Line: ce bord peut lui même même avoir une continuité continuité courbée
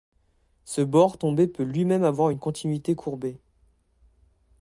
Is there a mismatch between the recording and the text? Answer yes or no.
yes